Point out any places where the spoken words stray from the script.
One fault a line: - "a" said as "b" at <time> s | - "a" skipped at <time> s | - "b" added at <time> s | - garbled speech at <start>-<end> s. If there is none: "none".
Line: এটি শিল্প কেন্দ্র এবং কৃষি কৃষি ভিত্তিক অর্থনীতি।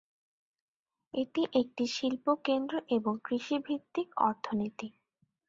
- "একটি" added at 1.5 s
- "কৃষি" skipped at 3.5 s